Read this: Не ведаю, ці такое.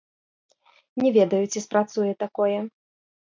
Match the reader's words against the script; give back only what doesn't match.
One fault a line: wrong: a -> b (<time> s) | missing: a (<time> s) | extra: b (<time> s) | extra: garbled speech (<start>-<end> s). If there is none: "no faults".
extra: спрацуе (1.6 s)